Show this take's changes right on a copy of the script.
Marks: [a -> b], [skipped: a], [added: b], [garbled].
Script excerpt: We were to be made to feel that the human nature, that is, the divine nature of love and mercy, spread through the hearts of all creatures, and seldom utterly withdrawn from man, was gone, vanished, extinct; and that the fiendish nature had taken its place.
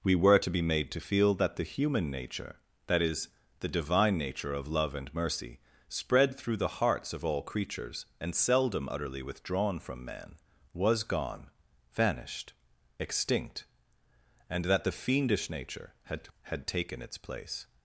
We were to be made to feel that the human nature, that is, the divine nature of love and mercy, spread through the hearts of all creatures, and seldom utterly withdrawn from man, was gone, vanished, extinct; and that the fiendish nature had [added: had] taken its place.